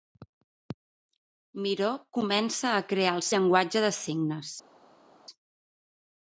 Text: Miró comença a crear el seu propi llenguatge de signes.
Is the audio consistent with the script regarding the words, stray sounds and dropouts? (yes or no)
no